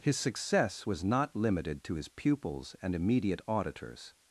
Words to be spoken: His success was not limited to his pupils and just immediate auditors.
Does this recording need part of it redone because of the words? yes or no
yes